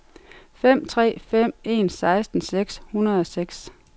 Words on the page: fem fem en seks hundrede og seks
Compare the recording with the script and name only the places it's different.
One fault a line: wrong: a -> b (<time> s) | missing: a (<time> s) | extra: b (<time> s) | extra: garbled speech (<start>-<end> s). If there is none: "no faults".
extra: tre (0.8 s)
extra: seksten (1.9 s)